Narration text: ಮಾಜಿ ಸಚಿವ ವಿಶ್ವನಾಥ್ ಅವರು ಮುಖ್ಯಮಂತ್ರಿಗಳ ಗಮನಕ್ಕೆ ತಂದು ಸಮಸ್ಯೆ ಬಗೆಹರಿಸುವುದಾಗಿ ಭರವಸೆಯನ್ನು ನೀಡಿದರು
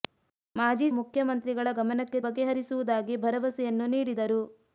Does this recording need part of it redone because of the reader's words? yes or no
yes